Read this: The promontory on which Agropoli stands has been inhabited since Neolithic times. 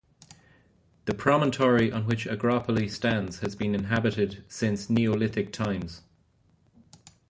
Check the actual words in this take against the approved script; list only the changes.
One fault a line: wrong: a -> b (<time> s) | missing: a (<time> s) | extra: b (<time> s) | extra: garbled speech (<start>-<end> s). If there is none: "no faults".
no faults